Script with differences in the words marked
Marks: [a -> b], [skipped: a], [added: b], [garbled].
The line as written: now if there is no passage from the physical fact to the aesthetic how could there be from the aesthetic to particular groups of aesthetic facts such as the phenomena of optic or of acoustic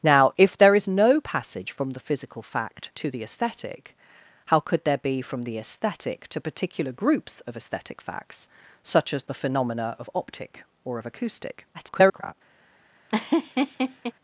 now if there is no passage from the physical fact to the aesthetic how could there be from the aesthetic to particular groups of aesthetic facts such as the phenomena of optic or of acoustic [garbled]